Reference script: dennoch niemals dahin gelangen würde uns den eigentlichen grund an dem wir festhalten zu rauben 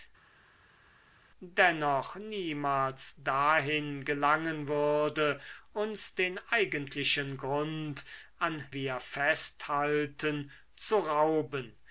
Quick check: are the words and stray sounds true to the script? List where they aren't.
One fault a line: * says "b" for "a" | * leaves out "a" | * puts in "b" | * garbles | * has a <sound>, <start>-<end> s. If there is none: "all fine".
* leaves out "dem"